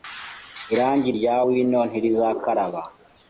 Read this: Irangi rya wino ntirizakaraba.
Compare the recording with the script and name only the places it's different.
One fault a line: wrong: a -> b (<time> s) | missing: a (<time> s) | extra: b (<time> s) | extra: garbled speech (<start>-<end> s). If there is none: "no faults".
no faults